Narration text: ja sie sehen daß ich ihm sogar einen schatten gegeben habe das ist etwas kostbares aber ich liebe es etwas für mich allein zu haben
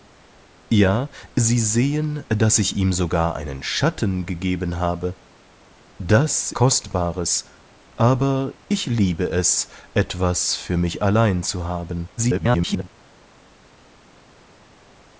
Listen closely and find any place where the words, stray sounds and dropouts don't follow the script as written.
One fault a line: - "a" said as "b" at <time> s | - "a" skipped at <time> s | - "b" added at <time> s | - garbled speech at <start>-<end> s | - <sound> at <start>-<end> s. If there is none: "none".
- "ist etwas" skipped at 6.5 s
- garbled speech at 12.2-12.9 s